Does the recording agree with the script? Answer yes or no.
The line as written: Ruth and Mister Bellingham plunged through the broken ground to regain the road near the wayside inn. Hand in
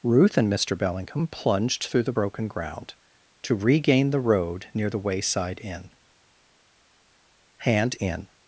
yes